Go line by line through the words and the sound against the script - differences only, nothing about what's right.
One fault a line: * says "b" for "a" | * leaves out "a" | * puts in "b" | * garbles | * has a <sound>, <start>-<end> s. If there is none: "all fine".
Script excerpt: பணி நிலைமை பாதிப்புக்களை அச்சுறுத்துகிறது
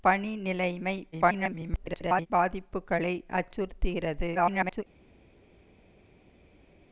* garbles
* garbles